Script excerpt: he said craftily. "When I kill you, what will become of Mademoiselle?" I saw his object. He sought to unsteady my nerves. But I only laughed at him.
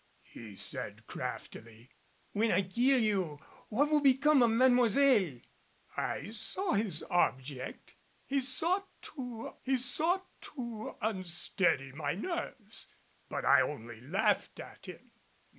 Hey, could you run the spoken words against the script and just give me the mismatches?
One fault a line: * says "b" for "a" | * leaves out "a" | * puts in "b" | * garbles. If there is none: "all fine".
* puts in "he sought to"